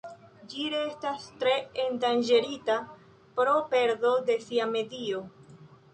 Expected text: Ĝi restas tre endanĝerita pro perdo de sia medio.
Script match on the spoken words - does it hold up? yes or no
yes